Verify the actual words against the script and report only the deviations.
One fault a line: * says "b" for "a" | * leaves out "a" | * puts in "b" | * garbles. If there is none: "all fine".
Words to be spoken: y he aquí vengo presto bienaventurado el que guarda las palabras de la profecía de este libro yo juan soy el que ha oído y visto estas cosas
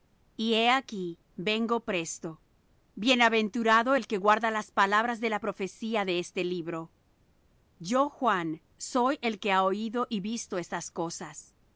all fine